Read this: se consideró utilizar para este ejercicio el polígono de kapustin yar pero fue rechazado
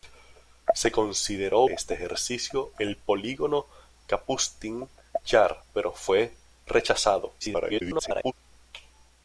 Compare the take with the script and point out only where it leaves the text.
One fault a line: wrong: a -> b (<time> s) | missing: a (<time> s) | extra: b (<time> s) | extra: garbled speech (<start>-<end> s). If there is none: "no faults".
missing: utilizar para (1.6 s)
missing: de (3.6 s)
extra: garbled speech (7.4-8.3 s)